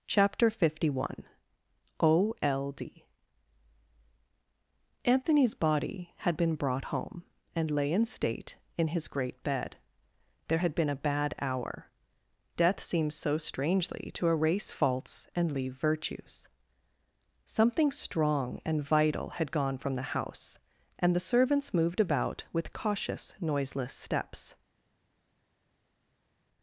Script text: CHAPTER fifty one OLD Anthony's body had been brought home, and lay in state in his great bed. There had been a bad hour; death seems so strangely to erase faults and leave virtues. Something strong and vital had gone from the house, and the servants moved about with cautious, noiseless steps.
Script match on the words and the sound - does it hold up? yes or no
yes